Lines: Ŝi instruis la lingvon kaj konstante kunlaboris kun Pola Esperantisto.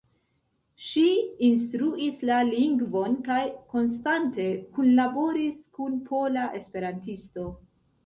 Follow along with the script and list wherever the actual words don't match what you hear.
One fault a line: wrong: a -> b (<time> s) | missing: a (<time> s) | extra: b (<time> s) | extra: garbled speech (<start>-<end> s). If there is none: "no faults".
no faults